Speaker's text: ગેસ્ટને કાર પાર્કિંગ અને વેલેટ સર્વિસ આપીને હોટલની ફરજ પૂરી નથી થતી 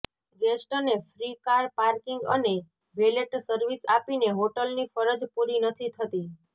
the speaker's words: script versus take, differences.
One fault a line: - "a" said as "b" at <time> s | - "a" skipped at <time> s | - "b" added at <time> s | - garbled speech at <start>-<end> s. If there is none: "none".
- "ફ્રી" added at 1.1 s